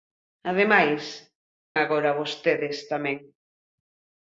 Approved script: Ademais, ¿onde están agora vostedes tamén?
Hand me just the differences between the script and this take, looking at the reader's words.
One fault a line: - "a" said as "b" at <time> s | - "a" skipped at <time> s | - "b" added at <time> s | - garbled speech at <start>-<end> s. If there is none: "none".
- "onde están" skipped at 1.0 s